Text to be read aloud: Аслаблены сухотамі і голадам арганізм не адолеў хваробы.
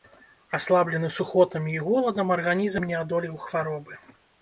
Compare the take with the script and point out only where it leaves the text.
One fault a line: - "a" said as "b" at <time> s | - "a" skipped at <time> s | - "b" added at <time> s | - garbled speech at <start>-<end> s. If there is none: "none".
none